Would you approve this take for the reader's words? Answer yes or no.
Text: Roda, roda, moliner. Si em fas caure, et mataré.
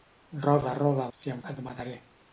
no